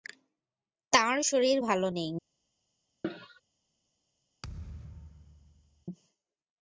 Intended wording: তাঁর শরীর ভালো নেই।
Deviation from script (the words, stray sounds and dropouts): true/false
true